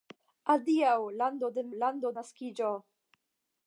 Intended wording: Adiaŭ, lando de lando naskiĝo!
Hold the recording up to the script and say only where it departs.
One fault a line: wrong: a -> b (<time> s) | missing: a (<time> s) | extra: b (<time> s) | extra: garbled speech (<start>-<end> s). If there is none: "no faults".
no faults